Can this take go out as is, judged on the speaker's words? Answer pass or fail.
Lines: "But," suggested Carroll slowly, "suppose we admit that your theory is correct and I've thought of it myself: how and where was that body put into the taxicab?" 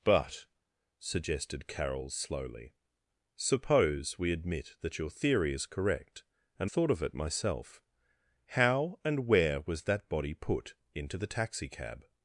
fail